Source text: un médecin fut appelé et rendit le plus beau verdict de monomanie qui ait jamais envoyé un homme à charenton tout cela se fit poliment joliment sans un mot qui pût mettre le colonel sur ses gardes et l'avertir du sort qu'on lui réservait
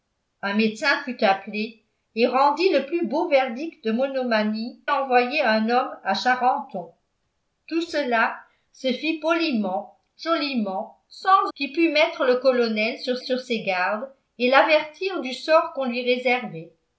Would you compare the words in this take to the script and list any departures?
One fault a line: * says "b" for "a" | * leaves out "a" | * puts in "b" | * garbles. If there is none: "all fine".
* leaves out "qui ait jamais"
* leaves out "un mot"
* puts in "sur"